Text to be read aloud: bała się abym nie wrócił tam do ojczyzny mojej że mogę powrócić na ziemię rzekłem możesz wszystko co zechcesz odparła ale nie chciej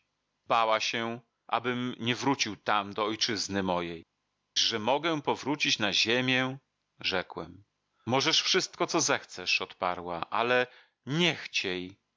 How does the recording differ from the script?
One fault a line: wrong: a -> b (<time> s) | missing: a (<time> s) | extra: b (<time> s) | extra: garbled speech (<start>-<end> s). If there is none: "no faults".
no faults